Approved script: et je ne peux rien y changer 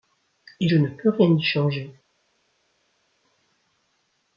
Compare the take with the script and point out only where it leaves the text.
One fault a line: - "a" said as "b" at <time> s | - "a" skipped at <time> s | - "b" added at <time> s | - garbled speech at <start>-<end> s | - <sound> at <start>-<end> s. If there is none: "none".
none